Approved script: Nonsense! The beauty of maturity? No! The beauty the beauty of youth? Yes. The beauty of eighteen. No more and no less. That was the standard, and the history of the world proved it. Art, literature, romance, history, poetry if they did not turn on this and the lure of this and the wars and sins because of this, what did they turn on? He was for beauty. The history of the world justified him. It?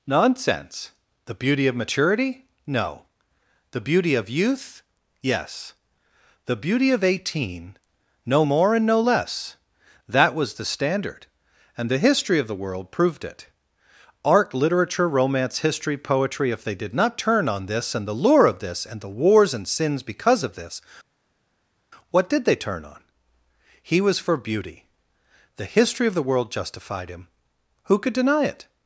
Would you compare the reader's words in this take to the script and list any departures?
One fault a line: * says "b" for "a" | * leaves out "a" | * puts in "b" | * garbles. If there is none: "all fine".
* leaves out "the beauty"
* puts in "Who could deny"